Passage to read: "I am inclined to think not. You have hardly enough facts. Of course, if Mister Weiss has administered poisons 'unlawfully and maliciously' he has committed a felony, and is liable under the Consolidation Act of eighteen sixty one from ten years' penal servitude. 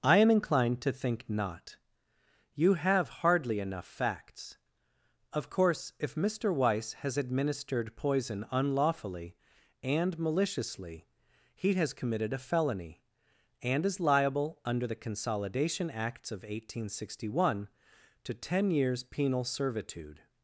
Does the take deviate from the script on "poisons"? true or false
true